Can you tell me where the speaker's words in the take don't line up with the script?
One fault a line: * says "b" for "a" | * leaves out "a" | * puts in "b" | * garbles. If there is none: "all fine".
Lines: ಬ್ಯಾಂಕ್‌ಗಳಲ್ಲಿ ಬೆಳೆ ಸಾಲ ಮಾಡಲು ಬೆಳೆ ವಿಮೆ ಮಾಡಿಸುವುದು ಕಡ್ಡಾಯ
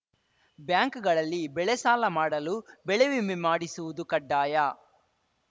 all fine